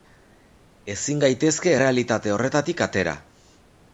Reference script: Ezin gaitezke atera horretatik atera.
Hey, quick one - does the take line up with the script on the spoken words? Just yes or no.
no